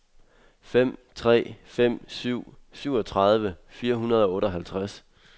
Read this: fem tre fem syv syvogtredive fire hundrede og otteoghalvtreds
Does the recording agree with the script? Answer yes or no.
yes